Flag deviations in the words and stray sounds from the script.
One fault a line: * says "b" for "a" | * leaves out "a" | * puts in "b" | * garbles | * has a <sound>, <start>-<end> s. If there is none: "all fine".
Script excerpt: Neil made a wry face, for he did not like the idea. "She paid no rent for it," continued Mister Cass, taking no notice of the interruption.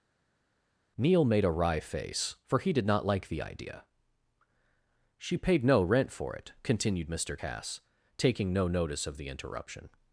all fine